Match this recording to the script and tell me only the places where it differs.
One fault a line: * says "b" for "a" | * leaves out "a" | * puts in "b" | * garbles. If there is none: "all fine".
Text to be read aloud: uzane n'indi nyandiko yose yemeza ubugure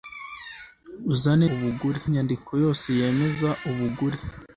* says "ubugure" for "n'indi"